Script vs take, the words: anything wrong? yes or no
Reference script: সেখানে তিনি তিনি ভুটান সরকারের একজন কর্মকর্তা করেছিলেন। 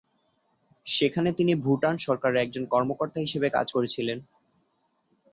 yes